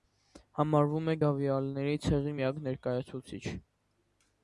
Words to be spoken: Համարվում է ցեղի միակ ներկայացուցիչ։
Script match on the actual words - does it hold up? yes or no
no